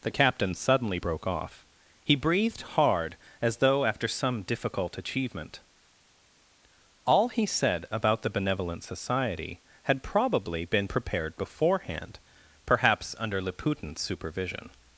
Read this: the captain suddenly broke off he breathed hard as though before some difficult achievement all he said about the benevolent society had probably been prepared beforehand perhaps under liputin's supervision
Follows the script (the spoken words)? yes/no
no